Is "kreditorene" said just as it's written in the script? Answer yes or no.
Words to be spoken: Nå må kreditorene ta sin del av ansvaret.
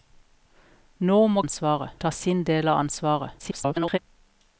no